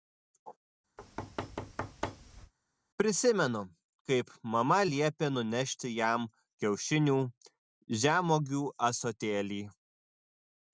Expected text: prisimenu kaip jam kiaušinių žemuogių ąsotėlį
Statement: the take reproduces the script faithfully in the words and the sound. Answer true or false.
false